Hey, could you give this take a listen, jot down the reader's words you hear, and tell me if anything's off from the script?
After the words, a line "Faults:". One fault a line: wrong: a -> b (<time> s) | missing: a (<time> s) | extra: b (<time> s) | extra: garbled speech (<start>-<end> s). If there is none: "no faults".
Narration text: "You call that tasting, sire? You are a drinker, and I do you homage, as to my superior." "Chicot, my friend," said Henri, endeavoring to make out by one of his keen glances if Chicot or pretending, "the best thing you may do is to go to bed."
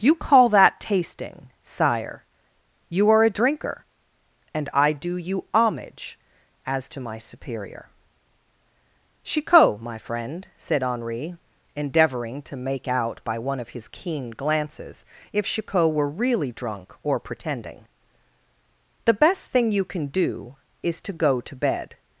"You call that tasting, sire? You are a drinker, and I do you homage, as to my superior." "Chicot, my friend," said Henri, endeavoring to make out by one of his keen glances if Chicot were really drunk or pretending, "the best thing you can do is to go to bed."
Faults:
extra: were really drunk (15.9 s)
wrong: may -> can (19.9 s)